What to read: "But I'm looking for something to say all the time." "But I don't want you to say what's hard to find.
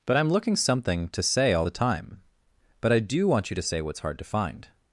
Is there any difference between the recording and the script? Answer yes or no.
yes